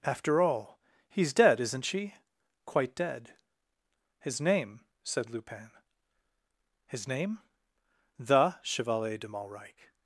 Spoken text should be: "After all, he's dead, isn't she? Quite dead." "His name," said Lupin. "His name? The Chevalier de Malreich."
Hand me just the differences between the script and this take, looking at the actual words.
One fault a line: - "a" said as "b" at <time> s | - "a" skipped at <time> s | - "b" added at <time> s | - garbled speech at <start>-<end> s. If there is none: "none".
none